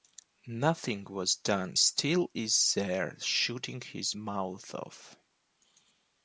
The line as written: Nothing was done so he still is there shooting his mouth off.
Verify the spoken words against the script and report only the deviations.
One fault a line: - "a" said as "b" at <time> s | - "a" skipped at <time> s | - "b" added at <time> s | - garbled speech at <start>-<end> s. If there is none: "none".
- "so he" skipped at 1.8 s